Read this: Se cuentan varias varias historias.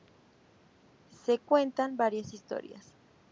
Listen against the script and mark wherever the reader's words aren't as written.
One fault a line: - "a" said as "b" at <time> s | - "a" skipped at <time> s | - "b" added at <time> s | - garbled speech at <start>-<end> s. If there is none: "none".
- "varias" skipped at 2.3 s